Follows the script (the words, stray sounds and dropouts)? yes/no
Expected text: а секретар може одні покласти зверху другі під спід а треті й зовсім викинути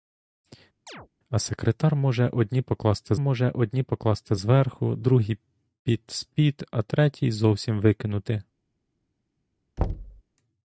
no